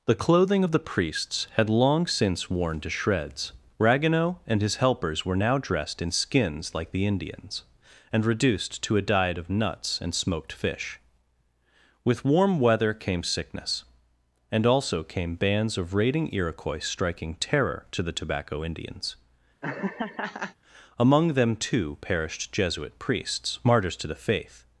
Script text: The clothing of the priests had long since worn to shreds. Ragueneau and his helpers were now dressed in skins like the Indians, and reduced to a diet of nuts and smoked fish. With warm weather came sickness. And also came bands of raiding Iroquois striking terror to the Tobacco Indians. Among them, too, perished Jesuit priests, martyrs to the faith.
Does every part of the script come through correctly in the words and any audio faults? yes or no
no